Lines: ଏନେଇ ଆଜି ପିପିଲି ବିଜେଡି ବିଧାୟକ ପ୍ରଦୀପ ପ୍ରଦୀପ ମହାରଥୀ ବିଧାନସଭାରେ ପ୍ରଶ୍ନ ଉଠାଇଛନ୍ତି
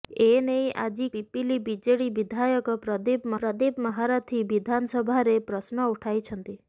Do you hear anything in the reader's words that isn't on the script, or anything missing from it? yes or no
no